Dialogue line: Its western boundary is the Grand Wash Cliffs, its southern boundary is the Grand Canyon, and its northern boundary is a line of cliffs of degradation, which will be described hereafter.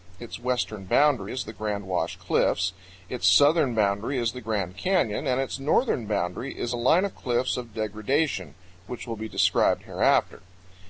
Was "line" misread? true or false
false